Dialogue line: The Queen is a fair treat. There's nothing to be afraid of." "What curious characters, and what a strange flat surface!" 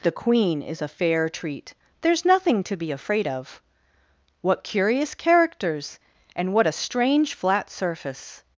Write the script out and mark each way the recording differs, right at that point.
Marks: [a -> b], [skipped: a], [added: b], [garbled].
The Queen is a fair treat. There's nothing to be afraid of." "What curious characters, and what a strange flat surface!"